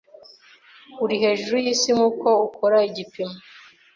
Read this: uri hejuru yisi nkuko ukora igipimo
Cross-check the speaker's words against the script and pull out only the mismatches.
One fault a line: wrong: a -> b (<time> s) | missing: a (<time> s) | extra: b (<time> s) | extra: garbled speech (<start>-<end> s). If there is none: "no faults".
no faults